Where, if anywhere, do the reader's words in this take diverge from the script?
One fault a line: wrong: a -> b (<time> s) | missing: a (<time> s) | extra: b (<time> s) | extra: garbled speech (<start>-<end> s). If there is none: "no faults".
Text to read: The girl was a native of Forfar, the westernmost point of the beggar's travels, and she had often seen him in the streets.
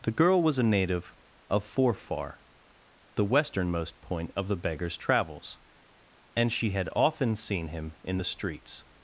no faults